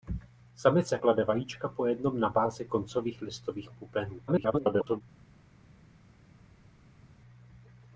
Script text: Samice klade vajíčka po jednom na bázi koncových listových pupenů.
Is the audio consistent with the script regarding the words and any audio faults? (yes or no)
no